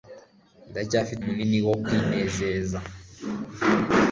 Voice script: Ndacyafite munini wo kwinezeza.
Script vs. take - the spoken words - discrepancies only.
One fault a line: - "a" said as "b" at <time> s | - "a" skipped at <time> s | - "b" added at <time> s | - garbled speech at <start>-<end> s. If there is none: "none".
none